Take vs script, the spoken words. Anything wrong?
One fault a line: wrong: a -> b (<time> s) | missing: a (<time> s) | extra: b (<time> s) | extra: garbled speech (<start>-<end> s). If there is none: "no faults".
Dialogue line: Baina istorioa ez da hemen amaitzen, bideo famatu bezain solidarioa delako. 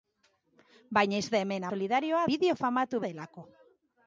missing: istorioa (1.2 s)
wrong: amaitzen -> solidarioa (1.7 s)
missing: bezain solidarioa (3.0 s)